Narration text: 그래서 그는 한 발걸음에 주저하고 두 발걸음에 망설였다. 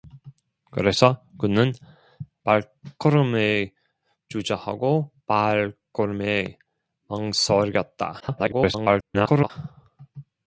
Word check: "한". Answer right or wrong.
wrong